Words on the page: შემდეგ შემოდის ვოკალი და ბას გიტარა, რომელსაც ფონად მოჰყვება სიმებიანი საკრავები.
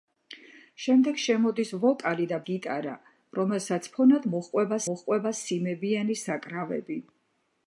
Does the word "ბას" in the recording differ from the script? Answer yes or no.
yes